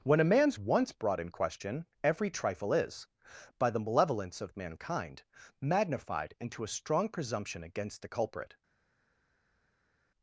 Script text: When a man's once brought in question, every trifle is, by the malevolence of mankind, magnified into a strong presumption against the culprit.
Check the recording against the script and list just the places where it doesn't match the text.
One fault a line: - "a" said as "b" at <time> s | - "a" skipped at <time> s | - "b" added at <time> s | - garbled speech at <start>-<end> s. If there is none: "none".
none